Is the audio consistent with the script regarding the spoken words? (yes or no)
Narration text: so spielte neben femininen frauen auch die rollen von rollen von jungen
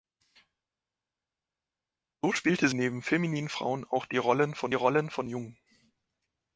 yes